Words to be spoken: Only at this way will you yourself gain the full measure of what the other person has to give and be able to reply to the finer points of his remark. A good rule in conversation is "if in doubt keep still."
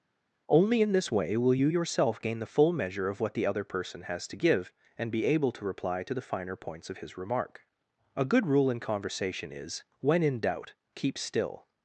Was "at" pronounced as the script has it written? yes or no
no